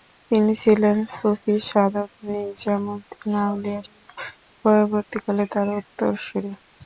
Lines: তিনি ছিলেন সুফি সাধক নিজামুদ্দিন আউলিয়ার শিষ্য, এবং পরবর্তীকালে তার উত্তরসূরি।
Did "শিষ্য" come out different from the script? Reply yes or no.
yes